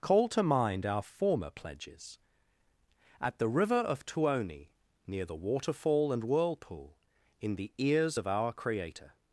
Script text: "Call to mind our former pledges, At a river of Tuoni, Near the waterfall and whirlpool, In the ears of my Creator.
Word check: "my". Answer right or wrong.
wrong